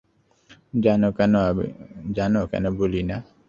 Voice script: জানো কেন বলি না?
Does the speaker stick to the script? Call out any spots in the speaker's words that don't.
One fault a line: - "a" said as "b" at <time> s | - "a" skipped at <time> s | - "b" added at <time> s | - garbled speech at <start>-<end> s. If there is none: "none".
none